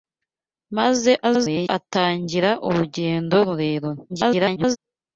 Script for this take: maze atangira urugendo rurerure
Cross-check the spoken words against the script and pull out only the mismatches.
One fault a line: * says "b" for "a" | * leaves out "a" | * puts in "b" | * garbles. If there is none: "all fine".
* garbles
* garbles